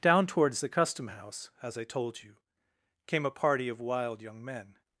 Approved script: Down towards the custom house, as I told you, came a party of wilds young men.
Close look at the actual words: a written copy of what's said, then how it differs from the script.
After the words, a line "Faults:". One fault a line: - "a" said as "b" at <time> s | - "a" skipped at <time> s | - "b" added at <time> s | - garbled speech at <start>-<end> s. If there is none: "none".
Down towards the custom house, as I told you, came a party of wild young men.
Faults:
- "wilds" said as "wild" at 3.8 s